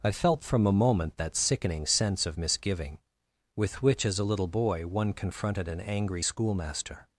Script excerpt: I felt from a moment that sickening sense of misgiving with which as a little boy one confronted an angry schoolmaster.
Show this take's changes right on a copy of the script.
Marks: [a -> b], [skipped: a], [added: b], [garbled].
I felt from a moment that sickening sense of misgiving with which as a little boy one confronted an angry schoolmaster.